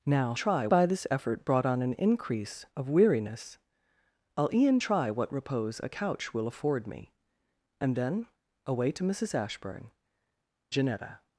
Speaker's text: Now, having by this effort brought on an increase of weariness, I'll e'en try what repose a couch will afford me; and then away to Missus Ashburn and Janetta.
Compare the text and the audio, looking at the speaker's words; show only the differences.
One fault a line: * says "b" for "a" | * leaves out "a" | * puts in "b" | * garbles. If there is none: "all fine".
* says "try" for "having"
* leaves out "and"